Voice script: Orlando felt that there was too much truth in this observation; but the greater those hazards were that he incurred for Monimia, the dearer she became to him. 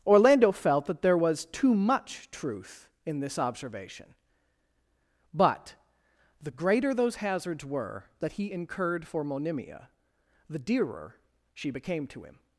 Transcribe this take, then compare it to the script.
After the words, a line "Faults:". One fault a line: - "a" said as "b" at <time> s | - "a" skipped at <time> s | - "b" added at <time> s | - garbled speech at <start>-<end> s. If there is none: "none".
Orlando felt that there was too much truth in this observation; but the greater those hazards were that he incurred for Monimia, the dearer she became to him.
Faults:
none